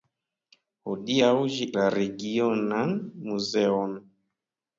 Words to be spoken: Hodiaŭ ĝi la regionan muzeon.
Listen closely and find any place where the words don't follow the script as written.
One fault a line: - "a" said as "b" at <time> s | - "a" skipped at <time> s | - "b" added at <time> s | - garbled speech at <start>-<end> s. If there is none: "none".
none